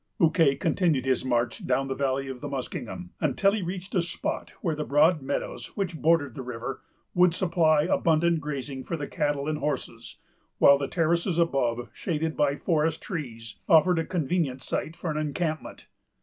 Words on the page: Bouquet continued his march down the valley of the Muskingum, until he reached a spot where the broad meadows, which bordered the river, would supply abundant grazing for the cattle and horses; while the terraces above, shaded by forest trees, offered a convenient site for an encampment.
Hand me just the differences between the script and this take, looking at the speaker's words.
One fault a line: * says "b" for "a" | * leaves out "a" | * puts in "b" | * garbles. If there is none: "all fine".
all fine